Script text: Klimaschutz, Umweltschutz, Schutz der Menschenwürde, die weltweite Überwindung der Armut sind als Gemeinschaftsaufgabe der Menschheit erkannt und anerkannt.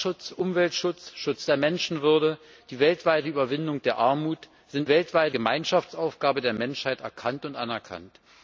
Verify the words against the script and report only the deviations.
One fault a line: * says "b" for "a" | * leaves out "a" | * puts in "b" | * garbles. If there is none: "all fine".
* says "weltweite" for "als"